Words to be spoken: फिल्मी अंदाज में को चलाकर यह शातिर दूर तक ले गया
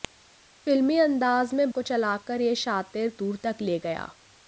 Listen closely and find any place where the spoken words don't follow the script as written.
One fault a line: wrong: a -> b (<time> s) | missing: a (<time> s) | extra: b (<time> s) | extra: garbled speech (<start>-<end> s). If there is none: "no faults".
no faults